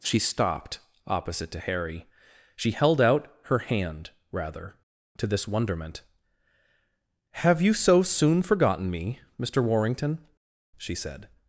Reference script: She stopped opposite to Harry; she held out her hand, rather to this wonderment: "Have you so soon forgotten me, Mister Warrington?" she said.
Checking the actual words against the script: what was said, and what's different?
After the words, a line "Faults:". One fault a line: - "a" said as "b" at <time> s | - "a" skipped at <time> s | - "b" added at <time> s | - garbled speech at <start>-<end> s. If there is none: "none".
She stopped opposite to Harry; she held out her hand, rather to this wonderment: "Have you so soon forgotten me, Mister Warrington?" she said.
Faults:
none